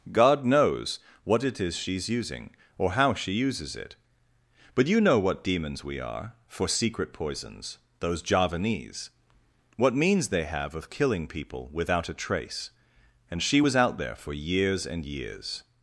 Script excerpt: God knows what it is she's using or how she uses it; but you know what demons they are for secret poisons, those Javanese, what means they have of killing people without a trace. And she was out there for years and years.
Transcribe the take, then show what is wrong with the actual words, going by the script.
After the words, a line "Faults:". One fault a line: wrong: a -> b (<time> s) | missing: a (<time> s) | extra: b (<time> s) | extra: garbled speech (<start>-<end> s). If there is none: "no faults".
God knows what it is she's using or how she uses it; but you know what demons we are for secret poisons, those Javanese, what means they have of killing people without a trace. And she was out there for years and years.
Faults:
wrong: they -> we (5.8 s)